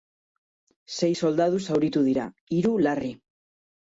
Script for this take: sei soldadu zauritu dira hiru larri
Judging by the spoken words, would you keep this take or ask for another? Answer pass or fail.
pass